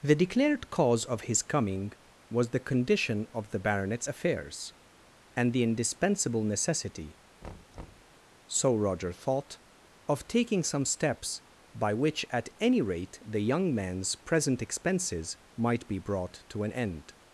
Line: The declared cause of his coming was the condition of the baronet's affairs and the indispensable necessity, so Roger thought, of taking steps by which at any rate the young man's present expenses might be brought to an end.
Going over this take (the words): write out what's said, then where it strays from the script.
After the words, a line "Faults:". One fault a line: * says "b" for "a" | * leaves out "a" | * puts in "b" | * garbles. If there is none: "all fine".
The declared cause of his coming was the condition of the baronet's affairs and the indispensable necessity, so Roger thought, of taking some steps by which at any rate the young man's present expenses might be brought to an end.
Faults:
* puts in "some"